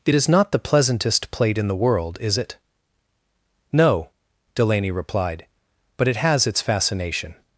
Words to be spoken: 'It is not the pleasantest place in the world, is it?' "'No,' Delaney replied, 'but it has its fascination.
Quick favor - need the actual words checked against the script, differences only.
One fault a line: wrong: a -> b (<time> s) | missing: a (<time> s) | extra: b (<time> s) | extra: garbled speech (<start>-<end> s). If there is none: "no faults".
wrong: place -> plate (1.3 s)